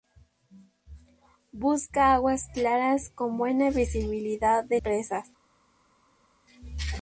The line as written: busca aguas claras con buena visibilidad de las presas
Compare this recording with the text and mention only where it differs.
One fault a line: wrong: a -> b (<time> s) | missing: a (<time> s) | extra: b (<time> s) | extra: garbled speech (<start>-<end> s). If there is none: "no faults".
missing: las (4.8 s)